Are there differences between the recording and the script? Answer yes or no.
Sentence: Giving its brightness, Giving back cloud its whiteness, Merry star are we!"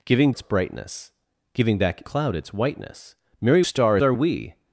no